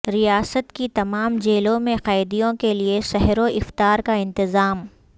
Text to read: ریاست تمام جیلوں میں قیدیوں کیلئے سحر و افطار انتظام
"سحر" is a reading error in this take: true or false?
false